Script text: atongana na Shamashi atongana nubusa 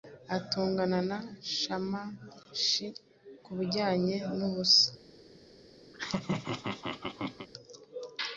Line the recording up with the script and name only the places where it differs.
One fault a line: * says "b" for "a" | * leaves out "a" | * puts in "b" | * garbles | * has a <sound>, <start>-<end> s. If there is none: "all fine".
* says "kubijyanye" for "atongana"
* has a laugh, 5.9-7.5 s